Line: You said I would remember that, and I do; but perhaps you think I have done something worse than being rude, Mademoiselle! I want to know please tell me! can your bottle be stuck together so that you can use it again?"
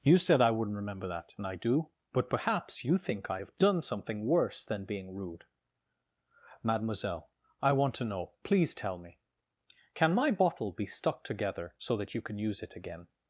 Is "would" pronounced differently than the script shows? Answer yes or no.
yes